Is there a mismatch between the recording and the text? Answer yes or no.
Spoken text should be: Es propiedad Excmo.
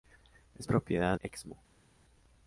no